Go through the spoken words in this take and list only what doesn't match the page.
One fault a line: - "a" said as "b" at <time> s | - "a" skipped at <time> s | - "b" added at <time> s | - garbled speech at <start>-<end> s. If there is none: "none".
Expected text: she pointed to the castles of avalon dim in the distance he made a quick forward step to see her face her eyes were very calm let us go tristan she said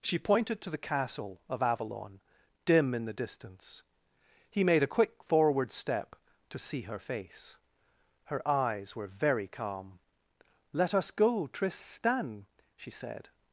- "castles" said as "castle" at 0.8 s